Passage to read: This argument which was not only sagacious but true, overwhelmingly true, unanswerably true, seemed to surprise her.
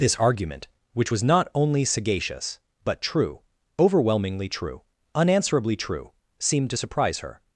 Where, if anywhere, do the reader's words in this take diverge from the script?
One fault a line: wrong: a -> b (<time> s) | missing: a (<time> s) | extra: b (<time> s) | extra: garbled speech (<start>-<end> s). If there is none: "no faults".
no faults